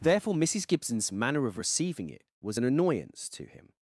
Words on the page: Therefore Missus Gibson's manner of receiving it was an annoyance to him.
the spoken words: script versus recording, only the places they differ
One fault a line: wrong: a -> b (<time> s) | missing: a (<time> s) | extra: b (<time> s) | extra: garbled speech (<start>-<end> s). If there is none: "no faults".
no faults